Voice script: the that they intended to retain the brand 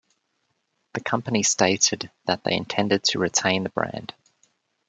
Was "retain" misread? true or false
false